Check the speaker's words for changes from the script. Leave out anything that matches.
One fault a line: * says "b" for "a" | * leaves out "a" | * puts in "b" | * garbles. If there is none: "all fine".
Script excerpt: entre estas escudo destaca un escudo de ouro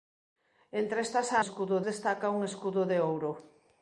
all fine